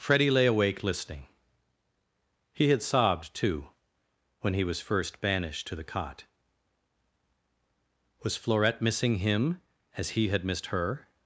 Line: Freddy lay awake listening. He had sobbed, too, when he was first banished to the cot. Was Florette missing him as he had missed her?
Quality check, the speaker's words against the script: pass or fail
pass